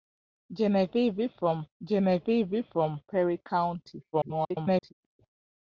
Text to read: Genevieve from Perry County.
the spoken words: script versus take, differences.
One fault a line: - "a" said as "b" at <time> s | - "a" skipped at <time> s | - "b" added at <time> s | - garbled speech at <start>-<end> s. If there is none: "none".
- "genevieve from" added at 1.8 s
- garbled speech at 4.1-4.9 s